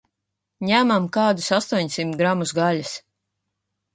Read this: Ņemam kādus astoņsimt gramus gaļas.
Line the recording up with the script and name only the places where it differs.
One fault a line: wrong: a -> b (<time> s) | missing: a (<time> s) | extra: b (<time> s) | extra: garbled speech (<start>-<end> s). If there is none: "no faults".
no faults